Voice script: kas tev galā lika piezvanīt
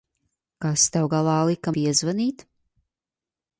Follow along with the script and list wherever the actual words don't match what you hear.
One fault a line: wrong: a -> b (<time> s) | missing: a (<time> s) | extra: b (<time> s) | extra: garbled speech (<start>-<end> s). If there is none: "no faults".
no faults